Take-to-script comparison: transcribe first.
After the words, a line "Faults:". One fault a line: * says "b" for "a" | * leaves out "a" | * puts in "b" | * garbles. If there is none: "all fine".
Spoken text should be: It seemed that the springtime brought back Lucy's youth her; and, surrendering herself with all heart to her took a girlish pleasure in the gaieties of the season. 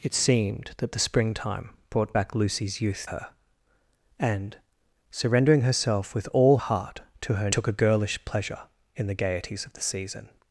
It seemed that the springtime brought back Lucy's youth her; and, surrendering herself with all heart to her took a girlish pleasure in the gaieties of the season.
Faults:
all fine